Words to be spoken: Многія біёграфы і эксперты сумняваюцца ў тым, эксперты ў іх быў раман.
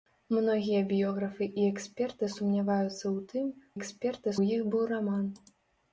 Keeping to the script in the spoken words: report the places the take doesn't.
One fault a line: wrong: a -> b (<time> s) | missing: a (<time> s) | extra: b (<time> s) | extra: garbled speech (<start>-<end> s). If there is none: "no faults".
no faults